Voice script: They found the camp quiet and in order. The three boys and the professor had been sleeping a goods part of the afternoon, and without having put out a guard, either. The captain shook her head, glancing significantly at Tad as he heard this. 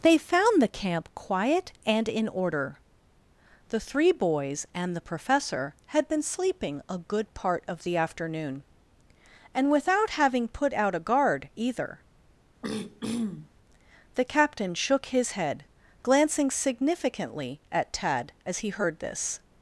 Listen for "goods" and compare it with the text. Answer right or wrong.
wrong